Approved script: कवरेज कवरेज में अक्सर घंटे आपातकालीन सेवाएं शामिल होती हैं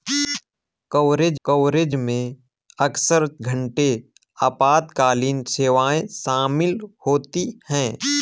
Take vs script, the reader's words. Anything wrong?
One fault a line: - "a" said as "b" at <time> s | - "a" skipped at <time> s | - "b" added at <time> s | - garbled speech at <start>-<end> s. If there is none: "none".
none